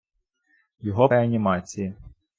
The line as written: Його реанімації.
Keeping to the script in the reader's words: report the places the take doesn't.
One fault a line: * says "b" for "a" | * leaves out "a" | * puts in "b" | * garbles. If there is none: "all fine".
all fine